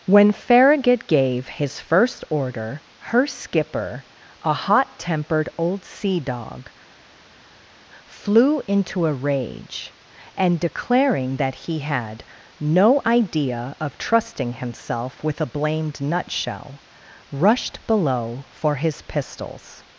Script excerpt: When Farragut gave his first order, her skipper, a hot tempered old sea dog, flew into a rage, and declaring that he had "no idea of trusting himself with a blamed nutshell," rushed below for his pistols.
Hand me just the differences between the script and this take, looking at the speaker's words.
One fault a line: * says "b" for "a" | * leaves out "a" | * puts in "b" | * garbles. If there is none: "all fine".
all fine